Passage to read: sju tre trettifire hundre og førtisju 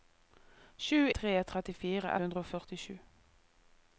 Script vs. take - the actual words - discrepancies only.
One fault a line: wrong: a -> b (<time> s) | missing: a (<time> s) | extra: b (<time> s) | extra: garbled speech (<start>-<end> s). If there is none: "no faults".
no faults